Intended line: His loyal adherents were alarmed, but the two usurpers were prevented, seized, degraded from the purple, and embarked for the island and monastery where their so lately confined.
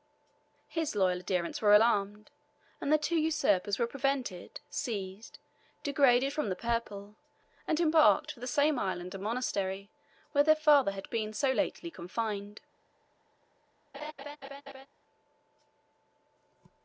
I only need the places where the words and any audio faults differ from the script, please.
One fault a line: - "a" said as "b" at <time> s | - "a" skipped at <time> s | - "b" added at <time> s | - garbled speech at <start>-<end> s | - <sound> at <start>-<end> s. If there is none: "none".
- "but" said as "and" at 2.8 s
- "same" added at 8.5 s
- "father had been" added at 10.6 s
- laugh at 13.9-14.9 s